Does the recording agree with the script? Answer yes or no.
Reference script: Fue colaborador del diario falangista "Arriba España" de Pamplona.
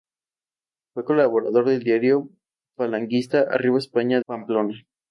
no